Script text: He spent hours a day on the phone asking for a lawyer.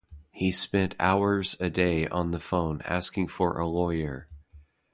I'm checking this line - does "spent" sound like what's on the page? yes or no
yes